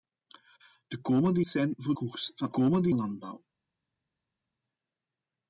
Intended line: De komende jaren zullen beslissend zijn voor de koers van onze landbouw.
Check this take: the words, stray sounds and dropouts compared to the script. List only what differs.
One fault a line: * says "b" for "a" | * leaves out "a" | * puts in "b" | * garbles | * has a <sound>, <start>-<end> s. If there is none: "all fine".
* leaves out "jaren zullen beslissend"
* leaves out "de"
* says "komende" for "onze"